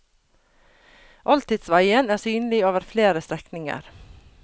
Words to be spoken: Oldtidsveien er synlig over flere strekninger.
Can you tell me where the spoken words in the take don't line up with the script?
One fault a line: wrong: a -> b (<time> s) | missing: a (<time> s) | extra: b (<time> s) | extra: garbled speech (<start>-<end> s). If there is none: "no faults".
no faults